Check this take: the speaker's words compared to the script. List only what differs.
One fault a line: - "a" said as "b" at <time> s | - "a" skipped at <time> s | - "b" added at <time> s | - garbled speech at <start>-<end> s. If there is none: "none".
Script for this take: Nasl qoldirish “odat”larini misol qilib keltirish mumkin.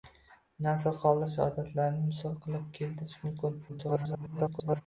- garbled speech at 3.7-4.8 s